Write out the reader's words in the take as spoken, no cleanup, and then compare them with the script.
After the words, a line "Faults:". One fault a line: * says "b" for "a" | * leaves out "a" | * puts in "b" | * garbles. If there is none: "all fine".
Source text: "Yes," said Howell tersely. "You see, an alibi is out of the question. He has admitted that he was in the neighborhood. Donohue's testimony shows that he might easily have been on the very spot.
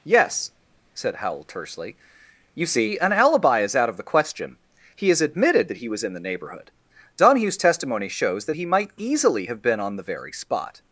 "Yes," said Howell tersely. "You see, an alibi is out of the question. He has admitted that he was in the neighborhood. Donohue's testimony shows that he might easily have been on the very spot.
Faults:
all fine